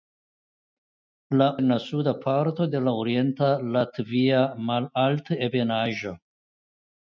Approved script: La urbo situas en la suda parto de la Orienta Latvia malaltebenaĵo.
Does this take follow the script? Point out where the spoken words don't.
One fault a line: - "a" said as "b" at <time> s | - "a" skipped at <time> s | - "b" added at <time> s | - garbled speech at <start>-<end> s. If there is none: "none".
- "urbo situas" skipped at 1.5 s